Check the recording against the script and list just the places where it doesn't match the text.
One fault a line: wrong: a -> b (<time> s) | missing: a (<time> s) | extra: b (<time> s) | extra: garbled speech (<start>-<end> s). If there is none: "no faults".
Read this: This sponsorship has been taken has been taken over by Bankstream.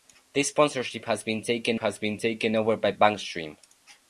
no faults